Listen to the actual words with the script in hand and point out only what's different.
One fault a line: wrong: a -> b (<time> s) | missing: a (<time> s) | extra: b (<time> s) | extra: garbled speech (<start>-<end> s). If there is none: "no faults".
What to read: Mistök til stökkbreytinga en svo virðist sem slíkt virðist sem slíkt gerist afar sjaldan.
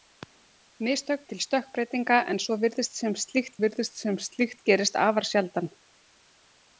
no faults